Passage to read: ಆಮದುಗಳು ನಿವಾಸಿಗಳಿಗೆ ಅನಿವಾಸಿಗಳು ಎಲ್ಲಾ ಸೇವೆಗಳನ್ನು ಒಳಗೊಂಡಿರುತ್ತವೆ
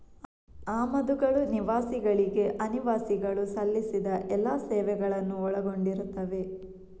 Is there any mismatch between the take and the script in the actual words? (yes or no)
yes